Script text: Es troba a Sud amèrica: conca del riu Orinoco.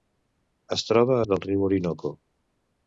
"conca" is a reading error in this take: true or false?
true